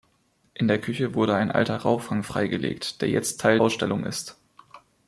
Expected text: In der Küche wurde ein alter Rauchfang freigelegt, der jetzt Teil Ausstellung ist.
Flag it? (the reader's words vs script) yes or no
no